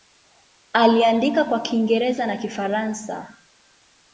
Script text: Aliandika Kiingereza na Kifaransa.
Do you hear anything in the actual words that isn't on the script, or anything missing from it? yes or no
yes